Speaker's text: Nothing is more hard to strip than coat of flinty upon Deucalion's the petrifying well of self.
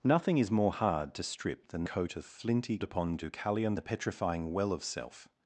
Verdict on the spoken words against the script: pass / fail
pass